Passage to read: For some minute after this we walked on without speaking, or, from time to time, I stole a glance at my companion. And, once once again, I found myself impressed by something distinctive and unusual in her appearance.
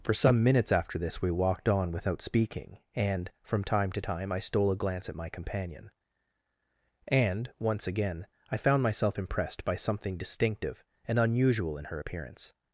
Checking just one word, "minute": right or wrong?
wrong